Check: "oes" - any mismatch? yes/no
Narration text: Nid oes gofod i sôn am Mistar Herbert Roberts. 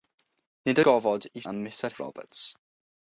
yes